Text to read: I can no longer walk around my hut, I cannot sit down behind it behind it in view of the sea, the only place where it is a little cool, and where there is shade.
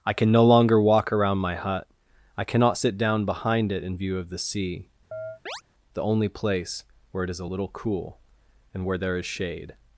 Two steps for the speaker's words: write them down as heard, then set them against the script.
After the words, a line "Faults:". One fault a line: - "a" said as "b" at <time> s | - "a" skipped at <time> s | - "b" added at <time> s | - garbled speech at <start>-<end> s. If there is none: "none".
I can no longer walk around my hut, I cannot sit down behind it in view of the sea, the only place where it is a little cool, and where there is shade.
Faults:
- "behind it" skipped at 3.8 s